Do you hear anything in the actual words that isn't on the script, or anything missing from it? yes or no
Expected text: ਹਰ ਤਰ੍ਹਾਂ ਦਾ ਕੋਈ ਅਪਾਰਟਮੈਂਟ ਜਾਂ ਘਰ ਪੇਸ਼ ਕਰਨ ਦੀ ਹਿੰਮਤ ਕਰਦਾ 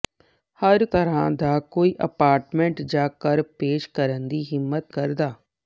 no